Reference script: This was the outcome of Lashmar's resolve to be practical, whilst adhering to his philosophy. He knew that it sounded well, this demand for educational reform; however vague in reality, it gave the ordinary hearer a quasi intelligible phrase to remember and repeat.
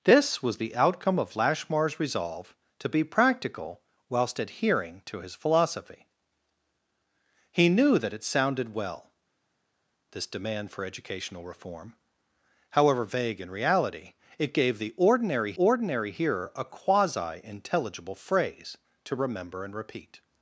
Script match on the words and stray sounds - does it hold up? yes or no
no